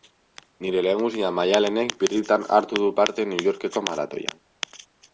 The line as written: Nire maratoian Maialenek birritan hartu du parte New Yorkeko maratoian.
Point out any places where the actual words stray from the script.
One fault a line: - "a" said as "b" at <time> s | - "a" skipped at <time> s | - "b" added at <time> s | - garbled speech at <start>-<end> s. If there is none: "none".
- "maratoian" said as "lehengusina" at 0.8 s